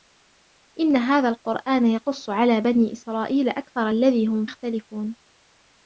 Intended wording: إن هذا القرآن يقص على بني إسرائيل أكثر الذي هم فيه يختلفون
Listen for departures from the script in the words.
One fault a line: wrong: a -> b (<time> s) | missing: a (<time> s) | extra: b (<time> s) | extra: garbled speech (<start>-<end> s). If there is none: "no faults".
missing: فيه (4.5 s)